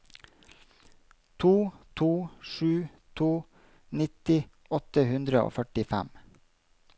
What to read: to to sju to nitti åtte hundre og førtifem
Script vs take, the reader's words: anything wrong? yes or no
no